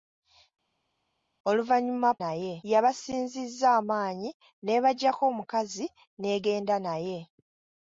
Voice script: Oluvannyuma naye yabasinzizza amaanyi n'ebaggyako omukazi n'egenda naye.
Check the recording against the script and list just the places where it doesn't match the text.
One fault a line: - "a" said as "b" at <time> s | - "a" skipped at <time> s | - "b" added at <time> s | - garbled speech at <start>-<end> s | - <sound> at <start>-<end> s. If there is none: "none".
none